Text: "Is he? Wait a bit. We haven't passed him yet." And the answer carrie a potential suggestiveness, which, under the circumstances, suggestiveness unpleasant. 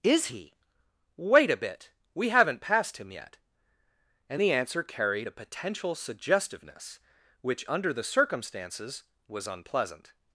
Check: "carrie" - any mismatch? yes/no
yes